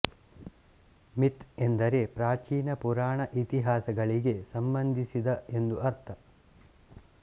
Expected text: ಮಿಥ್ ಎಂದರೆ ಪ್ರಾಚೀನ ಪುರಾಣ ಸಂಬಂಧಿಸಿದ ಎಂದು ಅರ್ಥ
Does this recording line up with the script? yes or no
no